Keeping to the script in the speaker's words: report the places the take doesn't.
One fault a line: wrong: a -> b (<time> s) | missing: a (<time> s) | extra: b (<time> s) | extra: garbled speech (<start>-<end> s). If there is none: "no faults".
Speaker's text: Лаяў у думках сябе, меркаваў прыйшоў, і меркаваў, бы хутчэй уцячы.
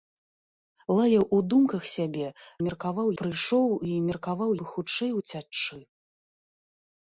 no faults